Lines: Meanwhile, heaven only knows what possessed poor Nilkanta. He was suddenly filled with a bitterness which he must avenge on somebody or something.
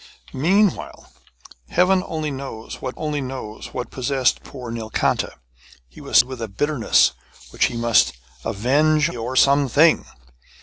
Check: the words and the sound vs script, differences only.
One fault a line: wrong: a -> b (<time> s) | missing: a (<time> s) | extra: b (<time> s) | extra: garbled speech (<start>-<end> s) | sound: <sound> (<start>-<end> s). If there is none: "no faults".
extra: only knows what (3.0 s)
missing: suddenly filled (6.2 s)
missing: on somebody (9.1 s)